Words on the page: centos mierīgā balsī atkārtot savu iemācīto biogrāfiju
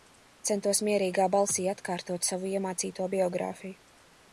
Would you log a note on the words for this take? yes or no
no